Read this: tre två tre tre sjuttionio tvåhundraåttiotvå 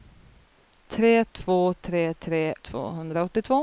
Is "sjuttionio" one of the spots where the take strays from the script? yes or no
yes